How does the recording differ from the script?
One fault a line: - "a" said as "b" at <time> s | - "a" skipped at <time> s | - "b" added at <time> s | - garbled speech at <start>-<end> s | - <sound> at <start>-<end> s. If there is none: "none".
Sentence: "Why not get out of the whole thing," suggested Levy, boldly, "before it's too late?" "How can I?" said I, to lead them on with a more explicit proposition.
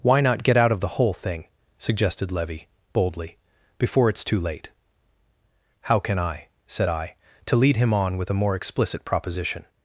- "them" said as "him" at 7.8 s